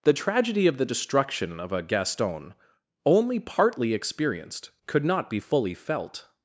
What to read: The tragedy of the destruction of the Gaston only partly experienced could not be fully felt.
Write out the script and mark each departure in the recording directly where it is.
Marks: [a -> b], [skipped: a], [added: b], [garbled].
The tragedy of the destruction of [the -> a] Gaston only partly experienced could not be fully felt.